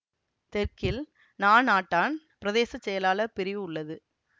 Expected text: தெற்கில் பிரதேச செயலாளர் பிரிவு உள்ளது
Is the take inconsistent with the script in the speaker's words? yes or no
yes